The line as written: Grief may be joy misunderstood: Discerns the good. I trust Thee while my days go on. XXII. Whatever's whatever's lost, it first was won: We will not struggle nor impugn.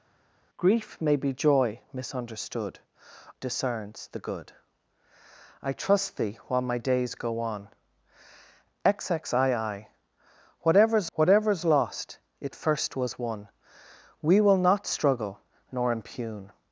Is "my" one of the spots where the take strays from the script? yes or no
no